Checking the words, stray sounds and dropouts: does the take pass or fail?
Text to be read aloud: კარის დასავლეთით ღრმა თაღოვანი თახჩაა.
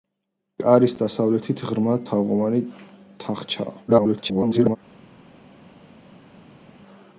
fail